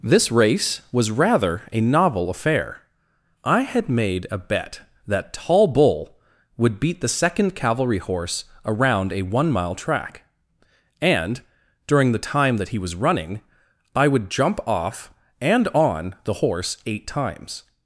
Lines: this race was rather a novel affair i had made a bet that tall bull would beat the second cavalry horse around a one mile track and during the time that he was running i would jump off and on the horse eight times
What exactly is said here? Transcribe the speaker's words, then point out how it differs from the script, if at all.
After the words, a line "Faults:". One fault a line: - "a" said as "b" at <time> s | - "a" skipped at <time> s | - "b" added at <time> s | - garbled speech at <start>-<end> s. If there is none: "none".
this race was rather a novel affair i had made a bet that tall bull would beat the second cavalry horse around a one mile track and during the time that he was running i would jump off and on the horse eight times
Faults:
none